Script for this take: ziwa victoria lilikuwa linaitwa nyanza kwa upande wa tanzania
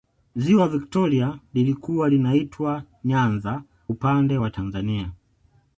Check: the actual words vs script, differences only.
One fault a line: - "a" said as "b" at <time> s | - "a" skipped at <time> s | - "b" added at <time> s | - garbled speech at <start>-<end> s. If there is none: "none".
- "kwa" skipped at 3.6 s